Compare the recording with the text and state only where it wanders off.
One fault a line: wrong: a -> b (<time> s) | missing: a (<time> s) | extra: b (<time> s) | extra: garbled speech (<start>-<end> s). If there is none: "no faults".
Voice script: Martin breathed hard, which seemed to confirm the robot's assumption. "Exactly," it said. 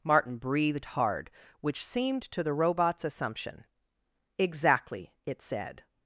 missing: confirm (2.4 s)